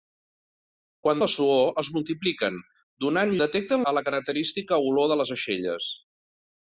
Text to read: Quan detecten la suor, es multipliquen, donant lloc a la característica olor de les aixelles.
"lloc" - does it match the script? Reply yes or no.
no